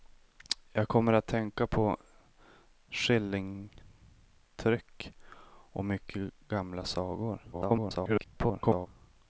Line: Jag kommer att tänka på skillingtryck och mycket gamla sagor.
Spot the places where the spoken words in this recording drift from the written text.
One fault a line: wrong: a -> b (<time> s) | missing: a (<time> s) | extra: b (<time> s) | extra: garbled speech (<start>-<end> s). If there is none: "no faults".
extra: garbled speech (7.5-8.9 s)